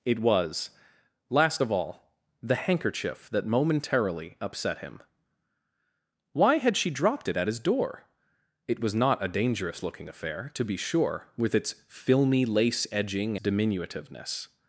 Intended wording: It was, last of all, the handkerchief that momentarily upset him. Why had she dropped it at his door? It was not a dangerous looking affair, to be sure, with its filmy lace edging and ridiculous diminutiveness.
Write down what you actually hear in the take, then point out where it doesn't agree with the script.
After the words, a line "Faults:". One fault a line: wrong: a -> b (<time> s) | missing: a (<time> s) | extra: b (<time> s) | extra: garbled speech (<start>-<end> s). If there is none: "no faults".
It was, last of all, the handkerchief that momentarily upset him. Why had she dropped it at his door? It was not a dangerous looking affair, to be sure, with its filmy lace edging diminutiveness.
Faults:
missing: and ridiculous (13.4 s)